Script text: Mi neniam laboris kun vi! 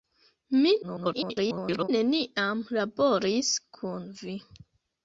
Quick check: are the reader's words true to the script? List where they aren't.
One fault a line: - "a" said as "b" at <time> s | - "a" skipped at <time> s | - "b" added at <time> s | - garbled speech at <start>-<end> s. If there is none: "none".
- garbled speech at 0.8-1.9 s